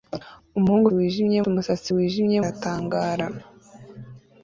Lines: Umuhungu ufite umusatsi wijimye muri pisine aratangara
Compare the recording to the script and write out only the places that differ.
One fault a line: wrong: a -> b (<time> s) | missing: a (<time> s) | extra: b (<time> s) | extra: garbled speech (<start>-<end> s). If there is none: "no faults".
wrong: ufite -> wijimye (1.0 s)
missing: muri pisine (2.4 s)